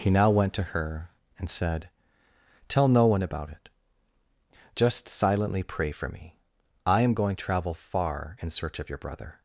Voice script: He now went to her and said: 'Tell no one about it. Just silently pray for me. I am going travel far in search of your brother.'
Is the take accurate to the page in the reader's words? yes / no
yes